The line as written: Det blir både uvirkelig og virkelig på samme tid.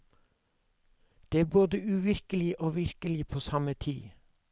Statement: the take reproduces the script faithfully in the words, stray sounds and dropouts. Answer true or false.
false